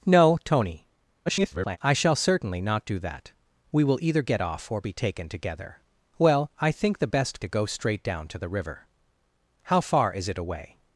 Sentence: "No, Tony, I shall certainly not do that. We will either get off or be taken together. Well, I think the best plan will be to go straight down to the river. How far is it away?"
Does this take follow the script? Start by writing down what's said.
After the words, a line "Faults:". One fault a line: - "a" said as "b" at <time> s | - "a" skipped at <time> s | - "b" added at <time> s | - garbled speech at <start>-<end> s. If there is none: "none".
"No, Tony, [garbled] I shall certainly not do that. We will either get off or be taken together. Well, I think the best to go straight down to the river. How far is it away?"
Faults:
- garbled speech at 1.3-1.8 s
- "plan will be" skipped at 7.4 s